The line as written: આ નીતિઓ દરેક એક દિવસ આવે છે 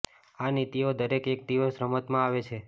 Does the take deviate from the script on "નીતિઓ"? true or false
false